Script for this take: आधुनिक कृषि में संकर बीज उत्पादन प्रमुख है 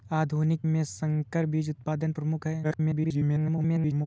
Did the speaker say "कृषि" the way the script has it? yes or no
no